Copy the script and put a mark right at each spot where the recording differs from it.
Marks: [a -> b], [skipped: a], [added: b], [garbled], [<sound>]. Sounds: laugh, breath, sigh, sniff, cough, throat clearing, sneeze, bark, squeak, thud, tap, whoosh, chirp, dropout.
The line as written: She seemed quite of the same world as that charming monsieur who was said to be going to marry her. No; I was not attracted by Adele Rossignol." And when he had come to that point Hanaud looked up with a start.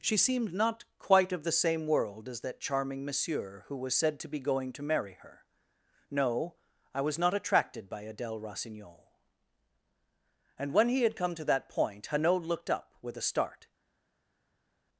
She seemed [added: not] quite of the same world as that charming monsieur who was said to be going to marry her. No; I was not attracted by Adele Rossignol." And when he had come to that point Hanaud looked up with a start.